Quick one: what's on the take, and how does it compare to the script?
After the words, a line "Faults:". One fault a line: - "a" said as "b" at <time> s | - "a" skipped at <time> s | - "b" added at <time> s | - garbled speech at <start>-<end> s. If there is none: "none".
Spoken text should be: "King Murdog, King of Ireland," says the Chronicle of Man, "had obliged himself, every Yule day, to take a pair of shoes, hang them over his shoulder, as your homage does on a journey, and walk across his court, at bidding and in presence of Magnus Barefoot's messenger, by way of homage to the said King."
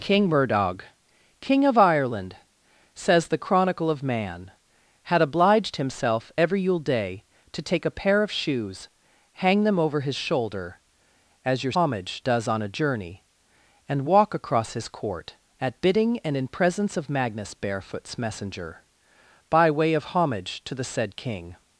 "King Murdog, King of Ireland," says the Chronicle of Man, "had obliged himself, every Yule day, to take a pair of shoes, hang them over his shoulder, as your homage does on a journey, and walk across his court, at bidding and in presence of Magnus Barefoot's messenger, by way of homage to the said King."
Faults:
none